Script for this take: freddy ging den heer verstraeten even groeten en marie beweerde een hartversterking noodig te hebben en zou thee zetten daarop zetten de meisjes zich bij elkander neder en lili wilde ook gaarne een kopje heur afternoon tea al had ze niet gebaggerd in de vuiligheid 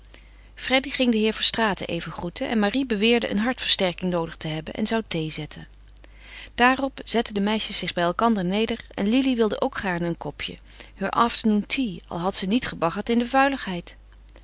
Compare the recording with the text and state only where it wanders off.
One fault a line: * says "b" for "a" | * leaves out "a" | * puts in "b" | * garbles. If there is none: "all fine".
all fine